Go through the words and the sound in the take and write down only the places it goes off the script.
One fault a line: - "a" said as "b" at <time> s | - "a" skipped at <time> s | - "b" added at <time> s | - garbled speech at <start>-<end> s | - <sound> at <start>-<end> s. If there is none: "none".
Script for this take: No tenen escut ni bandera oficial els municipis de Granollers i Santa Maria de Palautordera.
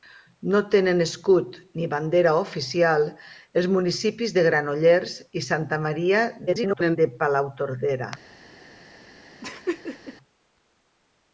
- garbled speech at 6.5-7.0 s
- laugh at 9.4-10.2 s